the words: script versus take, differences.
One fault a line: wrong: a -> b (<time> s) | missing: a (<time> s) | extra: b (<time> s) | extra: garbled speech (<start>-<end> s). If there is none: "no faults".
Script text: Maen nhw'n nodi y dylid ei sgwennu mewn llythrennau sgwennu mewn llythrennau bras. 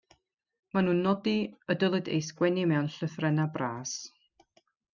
missing: sgwennu mewn llythrennau (3.5 s)